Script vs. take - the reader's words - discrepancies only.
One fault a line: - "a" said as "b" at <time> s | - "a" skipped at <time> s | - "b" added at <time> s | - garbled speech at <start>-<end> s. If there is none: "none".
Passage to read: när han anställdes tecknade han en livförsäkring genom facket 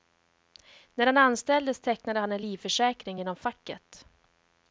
none